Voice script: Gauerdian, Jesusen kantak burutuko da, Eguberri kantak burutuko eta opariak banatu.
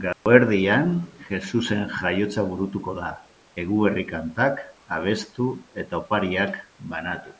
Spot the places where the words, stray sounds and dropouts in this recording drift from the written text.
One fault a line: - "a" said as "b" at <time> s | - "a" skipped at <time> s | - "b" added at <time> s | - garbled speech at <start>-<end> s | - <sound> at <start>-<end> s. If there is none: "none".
- dropout at 0.1-0.3 s
- "kantak" said as "jaiotza" at 1.9 s
- "burutuko" said as "abestu" at 4.9 s